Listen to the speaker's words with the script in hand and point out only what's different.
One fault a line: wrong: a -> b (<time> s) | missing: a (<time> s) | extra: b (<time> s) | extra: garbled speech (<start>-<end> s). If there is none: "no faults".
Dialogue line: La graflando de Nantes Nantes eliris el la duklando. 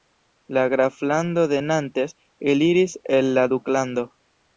missing: Nantes (2.2 s)